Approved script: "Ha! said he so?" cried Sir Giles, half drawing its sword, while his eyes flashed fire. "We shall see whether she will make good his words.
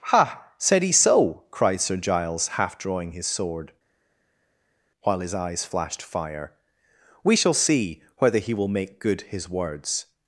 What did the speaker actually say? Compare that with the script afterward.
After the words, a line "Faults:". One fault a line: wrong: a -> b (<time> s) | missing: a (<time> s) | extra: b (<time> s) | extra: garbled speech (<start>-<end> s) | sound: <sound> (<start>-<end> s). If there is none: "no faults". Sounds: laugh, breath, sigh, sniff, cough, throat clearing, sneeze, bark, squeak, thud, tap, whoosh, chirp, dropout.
"Ha! said he so?" cried Sir Giles, half drawing his sword, while his eyes flashed fire. "We shall see whether he will make good his words.
Faults:
wrong: its -> his (3.1 s)
wrong: she -> he (8.4 s)